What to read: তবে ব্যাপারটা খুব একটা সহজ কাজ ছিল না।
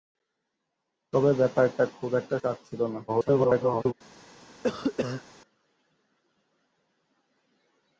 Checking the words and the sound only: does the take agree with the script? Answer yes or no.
no